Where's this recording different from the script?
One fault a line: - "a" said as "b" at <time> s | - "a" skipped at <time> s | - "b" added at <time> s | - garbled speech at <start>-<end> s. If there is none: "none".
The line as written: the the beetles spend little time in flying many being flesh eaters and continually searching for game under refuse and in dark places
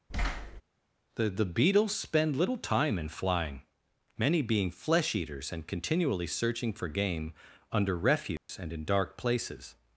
none